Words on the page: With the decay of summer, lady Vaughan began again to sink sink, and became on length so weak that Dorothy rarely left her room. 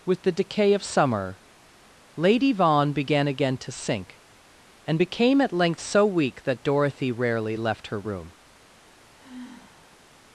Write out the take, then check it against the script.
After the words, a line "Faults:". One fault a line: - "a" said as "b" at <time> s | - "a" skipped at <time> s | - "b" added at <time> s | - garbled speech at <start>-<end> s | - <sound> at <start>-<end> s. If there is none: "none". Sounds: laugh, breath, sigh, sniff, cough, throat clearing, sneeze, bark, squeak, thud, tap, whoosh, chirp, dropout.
With the decay of summer, lady Vaughan began again to sink, and became at length so weak that Dorothy rarely left her room.
Faults:
- "sink" skipped at 4.2 s
- "on" said as "at" at 5.4 s
- sigh at 9.2-10.0 s